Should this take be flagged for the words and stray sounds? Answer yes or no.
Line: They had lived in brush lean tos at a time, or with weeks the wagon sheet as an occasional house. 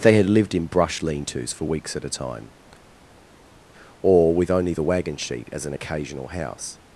yes